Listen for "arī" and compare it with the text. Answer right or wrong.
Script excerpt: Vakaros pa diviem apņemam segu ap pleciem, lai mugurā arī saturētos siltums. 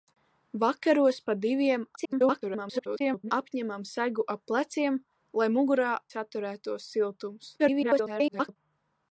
wrong